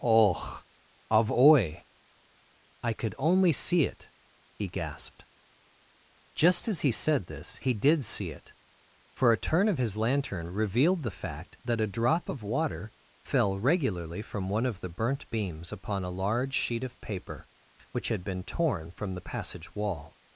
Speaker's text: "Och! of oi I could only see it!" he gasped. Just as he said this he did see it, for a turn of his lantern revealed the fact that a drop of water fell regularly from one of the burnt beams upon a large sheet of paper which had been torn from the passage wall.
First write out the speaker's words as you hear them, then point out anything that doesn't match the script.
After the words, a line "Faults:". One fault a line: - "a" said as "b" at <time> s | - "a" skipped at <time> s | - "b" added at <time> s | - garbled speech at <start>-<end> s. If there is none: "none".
"Och! of oi I could only see it!" he gasped. Just as he said this he did see it, for a turn of his lantern revealed the fact that a drop of water fell regularly from one of the burnt beams upon a large sheet of paper which had been torn from the passage wall.
Faults:
none